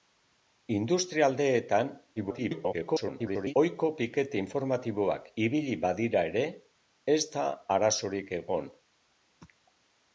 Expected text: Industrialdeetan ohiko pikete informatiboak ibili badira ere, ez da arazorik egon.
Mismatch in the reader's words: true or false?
true